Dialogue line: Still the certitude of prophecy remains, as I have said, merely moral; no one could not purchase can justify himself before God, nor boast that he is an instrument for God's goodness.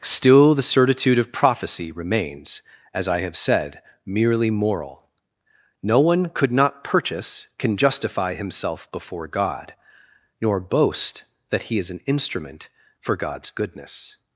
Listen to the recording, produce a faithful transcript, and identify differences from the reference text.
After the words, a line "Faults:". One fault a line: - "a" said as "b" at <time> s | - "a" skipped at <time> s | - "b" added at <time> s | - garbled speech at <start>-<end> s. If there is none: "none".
Still the certitude of prophecy remains, as I have said, merely moral; no one could not purchase can justify himself before God, nor boast that he is an instrument for God's goodness.
Faults:
none